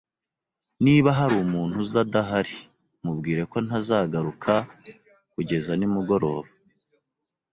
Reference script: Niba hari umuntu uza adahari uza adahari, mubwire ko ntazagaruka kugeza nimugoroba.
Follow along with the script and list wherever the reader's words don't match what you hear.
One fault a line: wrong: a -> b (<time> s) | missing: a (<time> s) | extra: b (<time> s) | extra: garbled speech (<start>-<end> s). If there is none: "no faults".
missing: uza adahari (2.6 s)